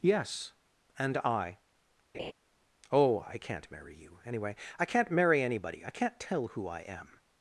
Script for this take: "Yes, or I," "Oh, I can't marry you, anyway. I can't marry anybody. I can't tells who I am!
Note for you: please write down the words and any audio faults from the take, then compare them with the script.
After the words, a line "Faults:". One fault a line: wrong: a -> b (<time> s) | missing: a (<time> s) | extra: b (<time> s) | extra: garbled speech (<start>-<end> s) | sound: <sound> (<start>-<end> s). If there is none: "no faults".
"Yes, and I," "Oh, I can't marry you, anyway. I can't marry anybody. I can't tell who I am!
Faults:
wrong: or -> and (1.0 s)
sound: laugh (2.1-2.3 s)
wrong: tells -> tell (6.2 s)